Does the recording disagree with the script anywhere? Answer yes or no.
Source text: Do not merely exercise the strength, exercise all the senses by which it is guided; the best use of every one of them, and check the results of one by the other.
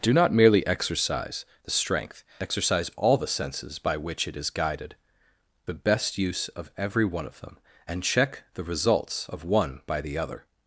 no